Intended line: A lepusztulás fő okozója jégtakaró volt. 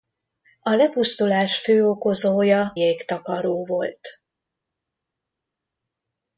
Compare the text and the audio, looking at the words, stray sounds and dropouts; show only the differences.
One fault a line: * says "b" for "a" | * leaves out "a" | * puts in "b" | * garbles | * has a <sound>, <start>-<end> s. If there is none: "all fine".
all fine